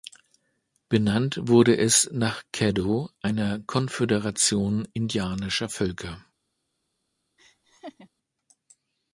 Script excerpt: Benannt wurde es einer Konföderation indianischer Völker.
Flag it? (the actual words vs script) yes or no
yes